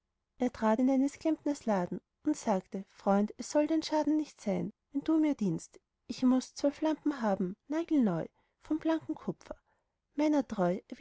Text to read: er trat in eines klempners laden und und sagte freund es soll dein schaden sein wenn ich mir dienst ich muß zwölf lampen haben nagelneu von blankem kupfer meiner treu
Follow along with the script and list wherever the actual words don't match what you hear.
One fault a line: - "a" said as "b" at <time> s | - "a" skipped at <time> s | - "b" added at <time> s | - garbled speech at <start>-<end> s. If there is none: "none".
- "und" skipped at 2.4 s
- "nicht" added at 4.1 s
- "ich" said as "du" at 5.0 s